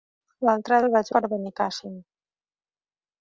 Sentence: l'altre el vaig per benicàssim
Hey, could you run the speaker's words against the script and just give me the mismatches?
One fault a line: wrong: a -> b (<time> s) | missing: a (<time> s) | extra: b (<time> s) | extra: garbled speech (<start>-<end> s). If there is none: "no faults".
no faults